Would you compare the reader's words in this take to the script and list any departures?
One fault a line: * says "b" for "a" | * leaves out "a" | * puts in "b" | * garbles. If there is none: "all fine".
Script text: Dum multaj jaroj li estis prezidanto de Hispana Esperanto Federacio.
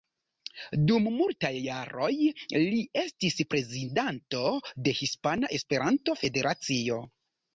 all fine